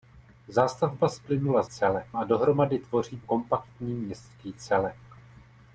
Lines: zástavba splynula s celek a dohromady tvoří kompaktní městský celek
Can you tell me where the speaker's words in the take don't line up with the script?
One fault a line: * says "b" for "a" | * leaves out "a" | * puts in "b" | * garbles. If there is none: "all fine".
all fine